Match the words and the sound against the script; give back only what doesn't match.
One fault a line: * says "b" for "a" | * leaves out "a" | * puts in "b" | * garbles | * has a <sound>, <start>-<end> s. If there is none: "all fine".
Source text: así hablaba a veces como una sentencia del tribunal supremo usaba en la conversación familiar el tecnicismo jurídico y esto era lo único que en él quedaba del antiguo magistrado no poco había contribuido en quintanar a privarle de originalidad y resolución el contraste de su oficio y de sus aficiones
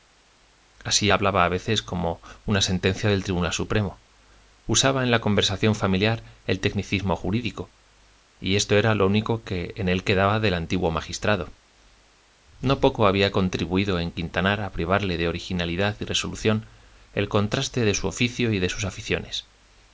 all fine